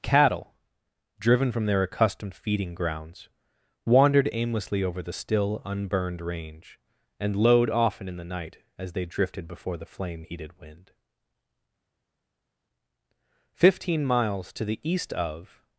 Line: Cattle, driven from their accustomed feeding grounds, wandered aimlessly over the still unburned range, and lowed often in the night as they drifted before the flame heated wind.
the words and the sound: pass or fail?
fail